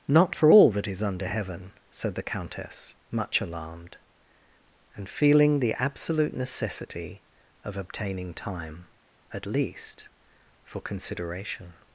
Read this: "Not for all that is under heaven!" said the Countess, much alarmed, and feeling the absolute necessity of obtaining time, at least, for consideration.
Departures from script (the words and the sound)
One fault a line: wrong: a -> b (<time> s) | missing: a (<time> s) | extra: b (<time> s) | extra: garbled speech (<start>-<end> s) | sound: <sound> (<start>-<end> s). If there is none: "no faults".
no faults